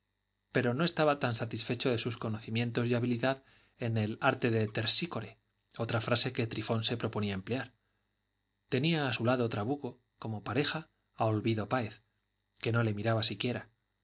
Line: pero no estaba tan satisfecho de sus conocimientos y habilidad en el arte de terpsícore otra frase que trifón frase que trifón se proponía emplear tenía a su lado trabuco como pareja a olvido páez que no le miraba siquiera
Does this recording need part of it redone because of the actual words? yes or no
yes